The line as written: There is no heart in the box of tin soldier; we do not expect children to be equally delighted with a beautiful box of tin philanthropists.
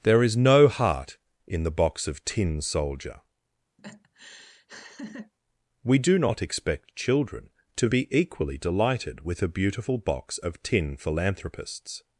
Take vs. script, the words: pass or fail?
pass